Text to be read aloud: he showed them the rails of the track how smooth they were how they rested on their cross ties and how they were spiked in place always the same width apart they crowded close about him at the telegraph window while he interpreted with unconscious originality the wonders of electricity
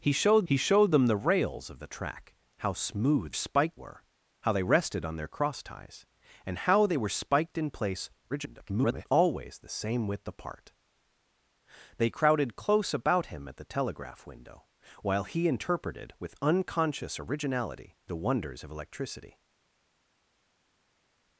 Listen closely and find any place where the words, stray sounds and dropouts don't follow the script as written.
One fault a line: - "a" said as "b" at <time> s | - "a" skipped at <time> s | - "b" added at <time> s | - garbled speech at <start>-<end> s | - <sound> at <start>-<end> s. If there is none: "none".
- "he showed" added at 0.5 s
- "they" said as "spiked" at 3.3 s
- garbled speech at 8.3-9.1 s